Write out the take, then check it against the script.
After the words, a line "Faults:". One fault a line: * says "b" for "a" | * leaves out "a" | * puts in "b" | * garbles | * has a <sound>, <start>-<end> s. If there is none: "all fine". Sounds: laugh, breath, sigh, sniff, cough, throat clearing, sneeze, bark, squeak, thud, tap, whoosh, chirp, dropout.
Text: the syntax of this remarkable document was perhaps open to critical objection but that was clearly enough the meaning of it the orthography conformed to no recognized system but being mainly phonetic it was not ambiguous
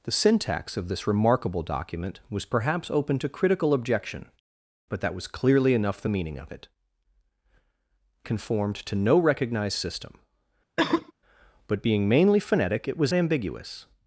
the syntax of this remarkable document was perhaps open to critical objection but that was clearly enough the meaning of it conformed to no recognized system but being mainly phonetic it was ambiguous
Faults:
* leaves out "the orthography"
* has a cough, 10.8-11.1 s
* leaves out "not"